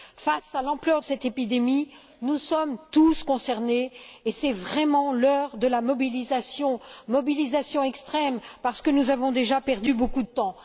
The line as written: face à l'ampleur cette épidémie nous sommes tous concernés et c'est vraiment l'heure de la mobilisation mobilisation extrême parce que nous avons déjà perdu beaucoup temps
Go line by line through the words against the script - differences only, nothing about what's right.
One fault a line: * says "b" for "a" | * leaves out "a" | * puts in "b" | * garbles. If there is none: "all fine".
all fine